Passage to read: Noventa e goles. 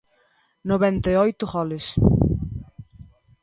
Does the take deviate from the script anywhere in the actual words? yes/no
yes